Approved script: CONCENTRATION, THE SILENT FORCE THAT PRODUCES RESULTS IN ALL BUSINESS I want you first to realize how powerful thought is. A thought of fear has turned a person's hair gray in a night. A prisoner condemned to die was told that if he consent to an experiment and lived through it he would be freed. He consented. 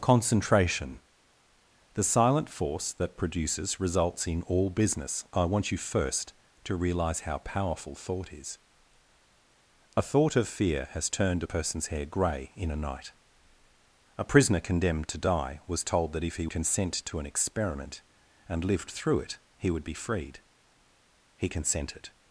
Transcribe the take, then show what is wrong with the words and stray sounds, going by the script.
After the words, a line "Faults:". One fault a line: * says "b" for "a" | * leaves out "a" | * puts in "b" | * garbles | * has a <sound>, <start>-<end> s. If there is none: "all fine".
CONCENTRATION, THE SILENT FORCE THAT PRODUCES RESULTS IN ALL BUSINESS I want you first to realize how powerful thought is. A thought of fear has turned a person's hair gray in a night. A prisoner condemned to die was told that if he consent to an experiment and lived through it he would be freed. He consented.
Faults:
all fine